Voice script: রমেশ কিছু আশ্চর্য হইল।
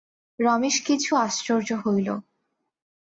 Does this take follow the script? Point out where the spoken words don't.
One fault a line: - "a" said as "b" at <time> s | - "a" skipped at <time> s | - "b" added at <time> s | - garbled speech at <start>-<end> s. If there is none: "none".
none